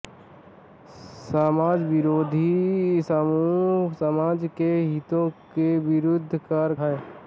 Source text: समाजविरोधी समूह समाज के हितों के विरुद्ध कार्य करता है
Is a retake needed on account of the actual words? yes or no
yes